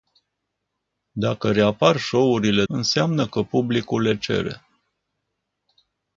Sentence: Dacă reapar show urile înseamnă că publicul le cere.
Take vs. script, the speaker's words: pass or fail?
pass